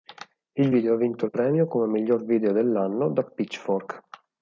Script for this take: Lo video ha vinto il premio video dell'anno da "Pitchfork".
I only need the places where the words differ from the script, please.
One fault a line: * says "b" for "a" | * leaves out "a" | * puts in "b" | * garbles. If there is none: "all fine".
* says "Il" for "Lo"
* puts in "come Miglior"